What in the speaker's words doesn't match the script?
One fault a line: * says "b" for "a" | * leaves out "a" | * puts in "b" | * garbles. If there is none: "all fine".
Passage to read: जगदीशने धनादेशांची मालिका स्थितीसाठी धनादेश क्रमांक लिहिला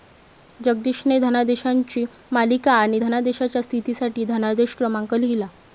* puts in "आणि धनादेशाच्या"